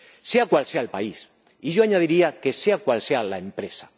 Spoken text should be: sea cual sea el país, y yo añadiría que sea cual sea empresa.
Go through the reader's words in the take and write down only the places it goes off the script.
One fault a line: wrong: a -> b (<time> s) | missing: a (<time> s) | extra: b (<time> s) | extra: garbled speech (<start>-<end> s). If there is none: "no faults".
extra: la (3.2 s)